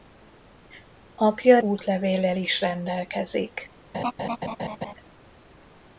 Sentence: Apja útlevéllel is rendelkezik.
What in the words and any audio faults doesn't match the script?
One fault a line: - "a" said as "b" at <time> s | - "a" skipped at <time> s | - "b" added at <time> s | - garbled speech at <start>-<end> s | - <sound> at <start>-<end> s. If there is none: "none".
- laugh at 3.9-4.9 s